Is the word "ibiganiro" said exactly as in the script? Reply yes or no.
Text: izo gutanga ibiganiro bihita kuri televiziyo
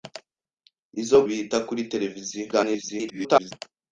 no